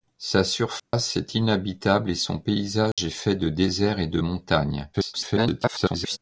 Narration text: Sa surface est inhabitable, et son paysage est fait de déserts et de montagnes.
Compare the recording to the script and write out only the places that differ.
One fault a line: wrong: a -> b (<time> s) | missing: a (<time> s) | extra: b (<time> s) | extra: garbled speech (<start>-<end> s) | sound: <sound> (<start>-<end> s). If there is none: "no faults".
sound: dropout (0.8-0.9 s)
sound: dropout (2.9-3.0 s)
extra: garbled speech (4.9-6.2 s)